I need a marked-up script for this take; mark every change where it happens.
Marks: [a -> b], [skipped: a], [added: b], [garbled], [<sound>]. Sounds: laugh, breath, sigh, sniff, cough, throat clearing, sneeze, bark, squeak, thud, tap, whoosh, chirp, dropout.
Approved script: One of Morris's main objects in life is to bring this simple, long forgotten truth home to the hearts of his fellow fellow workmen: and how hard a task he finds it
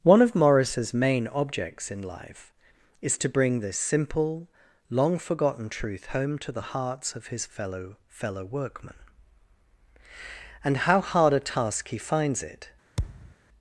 One of Morris's main objects in life is to bring this simple, long forgotten truth home to the hearts of his fellow fellow workmen: and how hard a task he finds it [thud]